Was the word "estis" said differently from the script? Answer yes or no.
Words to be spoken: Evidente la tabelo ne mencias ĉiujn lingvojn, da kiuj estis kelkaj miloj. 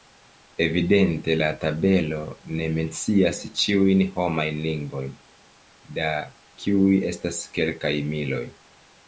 yes